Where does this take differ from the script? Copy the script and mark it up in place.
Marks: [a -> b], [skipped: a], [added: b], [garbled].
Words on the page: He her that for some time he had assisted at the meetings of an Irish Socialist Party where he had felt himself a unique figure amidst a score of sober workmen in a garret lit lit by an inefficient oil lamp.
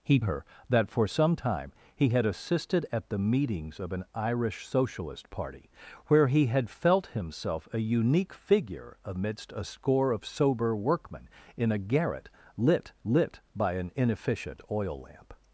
He her that for some time he had assisted at the meetings of an Irish Socialist Party where he had felt himself a unique figure amidst a score of sober workmen in a garret lit lit by an inefficient oil lamp.